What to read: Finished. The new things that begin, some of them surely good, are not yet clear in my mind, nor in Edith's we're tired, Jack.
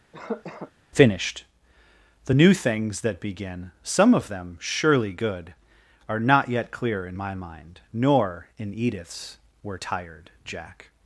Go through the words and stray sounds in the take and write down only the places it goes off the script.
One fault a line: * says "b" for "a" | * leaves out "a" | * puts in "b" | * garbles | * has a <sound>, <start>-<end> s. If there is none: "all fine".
* has a cough, 0.1-0.7 s